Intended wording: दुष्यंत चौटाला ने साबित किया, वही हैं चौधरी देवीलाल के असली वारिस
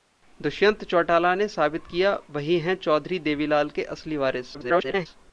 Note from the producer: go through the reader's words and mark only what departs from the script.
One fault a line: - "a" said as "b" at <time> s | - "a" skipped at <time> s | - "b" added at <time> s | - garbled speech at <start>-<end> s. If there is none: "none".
- garbled speech at 4.5-5.1 s